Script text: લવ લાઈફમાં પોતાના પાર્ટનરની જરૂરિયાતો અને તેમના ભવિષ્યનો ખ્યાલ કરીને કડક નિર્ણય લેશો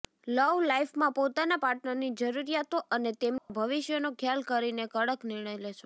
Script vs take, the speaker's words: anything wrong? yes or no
no